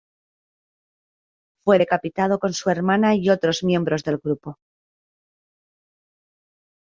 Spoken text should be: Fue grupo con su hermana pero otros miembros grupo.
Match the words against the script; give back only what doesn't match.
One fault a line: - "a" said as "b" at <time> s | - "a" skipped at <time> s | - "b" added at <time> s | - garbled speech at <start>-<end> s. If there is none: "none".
- "grupo" said as "decapitado" at 1.7 s
- "pero" said as "y" at 3.1 s
- "del" added at 4.0 s